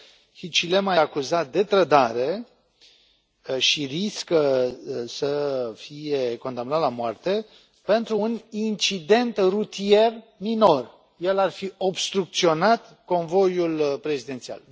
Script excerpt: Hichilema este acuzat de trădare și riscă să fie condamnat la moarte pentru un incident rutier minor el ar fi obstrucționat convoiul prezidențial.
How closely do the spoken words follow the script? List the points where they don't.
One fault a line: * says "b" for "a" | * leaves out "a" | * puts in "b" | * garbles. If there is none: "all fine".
* leaves out "este"